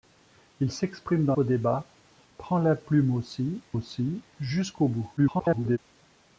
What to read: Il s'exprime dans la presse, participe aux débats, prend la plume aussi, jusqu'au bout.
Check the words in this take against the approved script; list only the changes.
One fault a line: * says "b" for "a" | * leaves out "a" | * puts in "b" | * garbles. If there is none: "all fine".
* leaves out "la presse participe"
* puts in "aussi"
* garbles